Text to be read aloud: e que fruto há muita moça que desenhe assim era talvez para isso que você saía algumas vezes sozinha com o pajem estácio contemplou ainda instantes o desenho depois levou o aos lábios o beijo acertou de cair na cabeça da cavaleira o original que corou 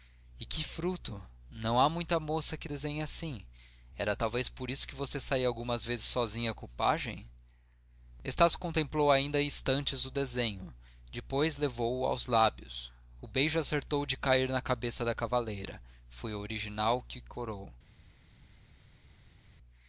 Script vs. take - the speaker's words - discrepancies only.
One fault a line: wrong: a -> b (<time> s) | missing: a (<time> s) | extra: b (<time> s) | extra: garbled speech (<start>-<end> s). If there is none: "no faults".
extra: não (1.5 s)
wrong: para -> por (4.5 s)
extra: foi (16.1 s)